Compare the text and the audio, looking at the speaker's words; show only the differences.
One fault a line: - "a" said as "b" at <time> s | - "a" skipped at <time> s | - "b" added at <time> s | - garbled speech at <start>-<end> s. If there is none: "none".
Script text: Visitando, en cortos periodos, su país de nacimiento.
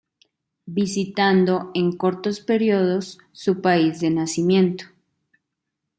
none